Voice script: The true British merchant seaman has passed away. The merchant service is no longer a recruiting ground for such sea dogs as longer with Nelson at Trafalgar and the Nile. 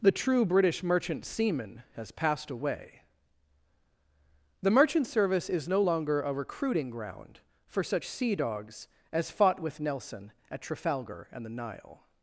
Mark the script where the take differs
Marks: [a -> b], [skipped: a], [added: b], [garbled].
The true British merchant seaman has passed away. The merchant service is no longer a recruiting ground for such sea dogs as [longer -> fought] with Nelson at Trafalgar and the Nile.